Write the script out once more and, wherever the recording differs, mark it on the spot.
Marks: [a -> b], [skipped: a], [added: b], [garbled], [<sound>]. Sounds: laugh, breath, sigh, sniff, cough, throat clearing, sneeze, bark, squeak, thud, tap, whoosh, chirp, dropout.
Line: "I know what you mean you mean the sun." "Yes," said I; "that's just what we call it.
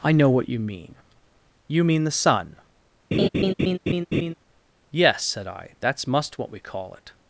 "I know what you mean you mean the sun." [laugh] "Yes," said I; "that's [just -> must] what we call it.